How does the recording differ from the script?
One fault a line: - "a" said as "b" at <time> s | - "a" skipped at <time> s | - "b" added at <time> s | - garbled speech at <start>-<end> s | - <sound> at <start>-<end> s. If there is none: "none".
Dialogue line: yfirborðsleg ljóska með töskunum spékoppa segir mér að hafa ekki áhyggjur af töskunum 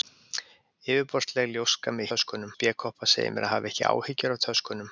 none